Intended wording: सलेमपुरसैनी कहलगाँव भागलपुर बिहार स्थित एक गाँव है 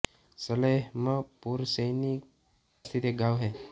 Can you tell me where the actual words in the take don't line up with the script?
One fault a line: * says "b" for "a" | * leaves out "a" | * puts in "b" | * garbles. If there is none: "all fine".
* leaves out "कहलगाँव भागलपुर बिहार"